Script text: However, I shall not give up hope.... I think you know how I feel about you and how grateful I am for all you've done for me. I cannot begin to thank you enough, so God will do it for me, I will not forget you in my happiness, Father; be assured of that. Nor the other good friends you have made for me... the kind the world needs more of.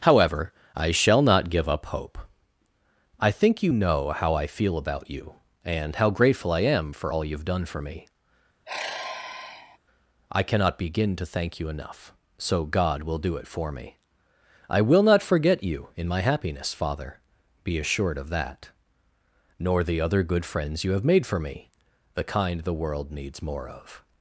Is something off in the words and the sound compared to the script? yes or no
yes